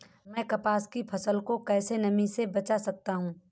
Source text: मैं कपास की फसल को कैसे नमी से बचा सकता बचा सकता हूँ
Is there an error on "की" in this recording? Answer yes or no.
no